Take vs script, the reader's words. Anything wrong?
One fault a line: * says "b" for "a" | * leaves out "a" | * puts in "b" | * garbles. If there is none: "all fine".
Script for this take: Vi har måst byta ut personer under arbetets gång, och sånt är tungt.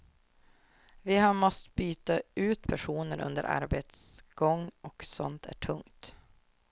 all fine